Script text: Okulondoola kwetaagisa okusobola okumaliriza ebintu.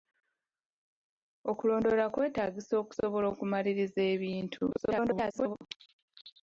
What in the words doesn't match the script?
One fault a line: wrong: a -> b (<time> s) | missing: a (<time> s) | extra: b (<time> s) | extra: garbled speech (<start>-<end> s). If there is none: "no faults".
extra: garbled speech (4.7-5.6 s)